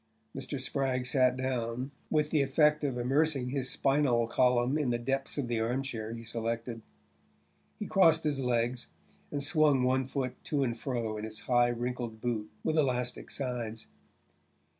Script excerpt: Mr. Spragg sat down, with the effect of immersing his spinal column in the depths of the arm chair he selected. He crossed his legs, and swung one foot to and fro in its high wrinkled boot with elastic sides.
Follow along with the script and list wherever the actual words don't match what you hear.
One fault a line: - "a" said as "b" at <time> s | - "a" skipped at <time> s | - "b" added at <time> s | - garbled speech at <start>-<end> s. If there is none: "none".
none